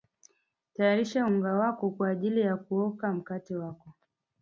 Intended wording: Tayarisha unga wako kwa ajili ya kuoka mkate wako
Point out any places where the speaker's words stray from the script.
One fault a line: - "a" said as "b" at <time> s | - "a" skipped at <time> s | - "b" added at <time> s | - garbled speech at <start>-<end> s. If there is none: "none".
none